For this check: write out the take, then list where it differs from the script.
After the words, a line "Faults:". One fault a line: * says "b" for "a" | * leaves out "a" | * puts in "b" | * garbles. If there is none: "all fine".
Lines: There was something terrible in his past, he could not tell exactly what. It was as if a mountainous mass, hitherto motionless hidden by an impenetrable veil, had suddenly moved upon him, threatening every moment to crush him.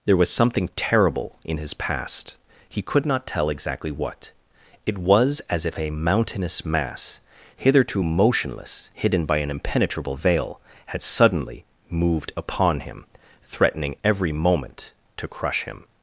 There was something terrible in his past, he could not tell exactly what. It was as if a mountainous mass, hitherto motionless hidden by an impenetrable veil, had suddenly moved upon him, threatening every moment to crush him.
Faults:
all fine